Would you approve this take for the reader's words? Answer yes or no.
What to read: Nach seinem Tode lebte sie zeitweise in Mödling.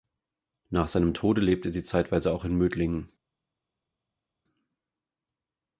no